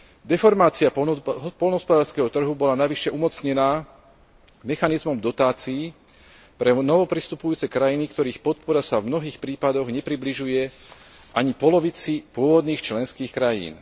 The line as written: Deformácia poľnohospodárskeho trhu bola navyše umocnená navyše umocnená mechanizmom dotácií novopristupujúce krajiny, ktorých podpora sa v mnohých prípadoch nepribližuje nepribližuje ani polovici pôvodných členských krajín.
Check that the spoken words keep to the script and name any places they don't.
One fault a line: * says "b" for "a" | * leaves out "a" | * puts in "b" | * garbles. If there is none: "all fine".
* leaves out "navyše umocnená"
* puts in "pre"
* leaves out "nepribližuje"